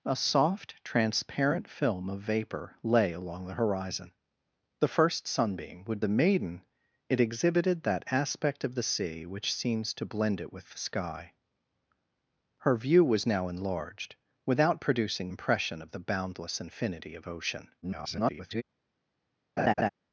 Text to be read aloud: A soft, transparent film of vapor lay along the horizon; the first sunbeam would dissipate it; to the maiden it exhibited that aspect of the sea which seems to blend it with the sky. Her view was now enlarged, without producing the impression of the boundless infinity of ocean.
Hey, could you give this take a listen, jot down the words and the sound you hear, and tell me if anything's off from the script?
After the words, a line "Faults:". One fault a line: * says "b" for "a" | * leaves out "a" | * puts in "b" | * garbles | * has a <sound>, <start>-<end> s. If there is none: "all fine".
A soft, transparent film of vapor lay along the horizon; the first sunbeam would the maiden it exhibited that aspect of the sea which seems to blend it with the sky. Her view was now enlarged, without producing impression of the boundless infinity of ocean. [garbled]
Faults:
* leaves out "dissipate it to"
* leaves out "the"
* garbles
* has a laugh, 19.6-19.9 s